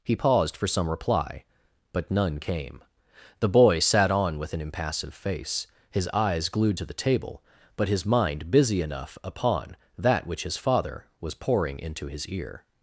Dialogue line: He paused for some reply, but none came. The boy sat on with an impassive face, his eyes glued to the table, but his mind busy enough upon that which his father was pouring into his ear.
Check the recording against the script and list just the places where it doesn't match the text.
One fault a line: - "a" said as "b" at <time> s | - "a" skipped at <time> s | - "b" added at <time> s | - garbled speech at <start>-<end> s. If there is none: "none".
none